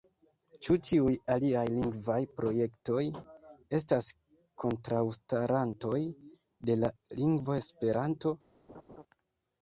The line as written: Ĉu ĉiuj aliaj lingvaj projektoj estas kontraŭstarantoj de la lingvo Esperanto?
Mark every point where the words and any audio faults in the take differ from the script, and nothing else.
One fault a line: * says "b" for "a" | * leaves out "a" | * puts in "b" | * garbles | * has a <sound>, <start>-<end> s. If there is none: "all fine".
* has a laugh, 8.7-9.0 s